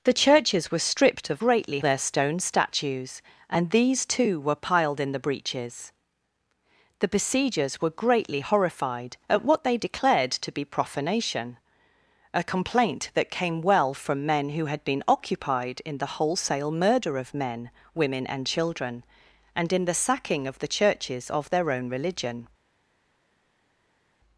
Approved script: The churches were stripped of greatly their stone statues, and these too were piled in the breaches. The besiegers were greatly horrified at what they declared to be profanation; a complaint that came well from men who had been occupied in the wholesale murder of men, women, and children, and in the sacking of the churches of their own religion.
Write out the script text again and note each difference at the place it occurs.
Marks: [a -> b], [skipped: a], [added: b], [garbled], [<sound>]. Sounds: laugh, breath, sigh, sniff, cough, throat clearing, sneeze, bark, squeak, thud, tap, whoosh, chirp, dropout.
The churches were stripped of greatly their stone statues, and these too were piled in the breaches. The besiegers were greatly horrified at what they declared to be profanation; a complaint that came well from men who had been occupied in the wholesale murder of men, women, and children, and in the sacking of the churches of their own religion.